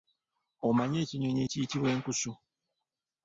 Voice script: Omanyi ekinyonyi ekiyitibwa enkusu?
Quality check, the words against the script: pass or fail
pass